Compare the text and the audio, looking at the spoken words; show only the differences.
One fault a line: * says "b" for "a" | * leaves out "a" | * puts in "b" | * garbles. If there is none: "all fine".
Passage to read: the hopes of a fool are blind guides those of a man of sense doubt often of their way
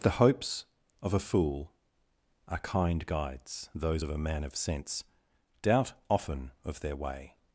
* says "kind" for "blind"